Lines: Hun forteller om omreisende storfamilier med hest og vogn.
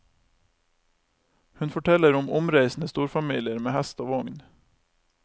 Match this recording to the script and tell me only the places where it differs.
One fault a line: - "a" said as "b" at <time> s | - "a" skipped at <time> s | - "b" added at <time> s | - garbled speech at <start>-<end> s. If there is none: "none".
none